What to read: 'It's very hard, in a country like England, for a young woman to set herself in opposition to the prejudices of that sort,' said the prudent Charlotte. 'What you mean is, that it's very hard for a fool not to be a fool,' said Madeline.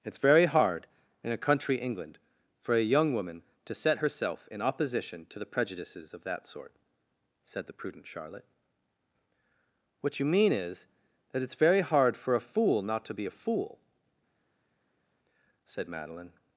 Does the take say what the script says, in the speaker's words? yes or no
no